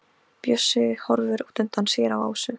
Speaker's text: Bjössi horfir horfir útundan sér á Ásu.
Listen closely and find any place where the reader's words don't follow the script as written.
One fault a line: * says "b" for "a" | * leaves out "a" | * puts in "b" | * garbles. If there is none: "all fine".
* leaves out "horfir"